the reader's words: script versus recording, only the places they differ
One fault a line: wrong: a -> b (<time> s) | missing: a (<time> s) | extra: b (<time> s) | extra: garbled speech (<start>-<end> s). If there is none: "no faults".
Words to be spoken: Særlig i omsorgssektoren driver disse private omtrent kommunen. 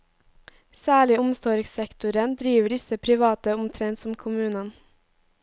extra: som (4.0 s)